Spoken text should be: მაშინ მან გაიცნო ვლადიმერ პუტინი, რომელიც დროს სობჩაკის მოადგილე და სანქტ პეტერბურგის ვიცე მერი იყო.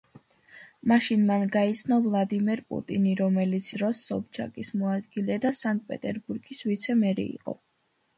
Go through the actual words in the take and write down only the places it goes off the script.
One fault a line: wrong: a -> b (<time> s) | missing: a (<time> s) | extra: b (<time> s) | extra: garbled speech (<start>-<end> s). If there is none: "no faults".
no faults